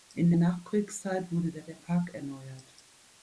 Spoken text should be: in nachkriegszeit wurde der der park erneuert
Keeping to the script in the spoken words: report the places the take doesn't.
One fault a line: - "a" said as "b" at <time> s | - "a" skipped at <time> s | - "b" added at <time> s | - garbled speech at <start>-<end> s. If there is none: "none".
none